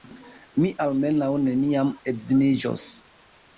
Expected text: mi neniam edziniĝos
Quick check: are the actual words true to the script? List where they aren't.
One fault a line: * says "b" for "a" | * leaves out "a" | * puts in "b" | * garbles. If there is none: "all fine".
* puts in "almenaŭ"